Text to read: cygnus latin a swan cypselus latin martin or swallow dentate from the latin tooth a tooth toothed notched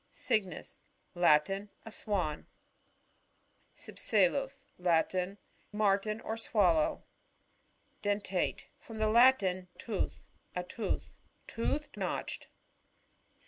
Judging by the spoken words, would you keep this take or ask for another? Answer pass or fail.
pass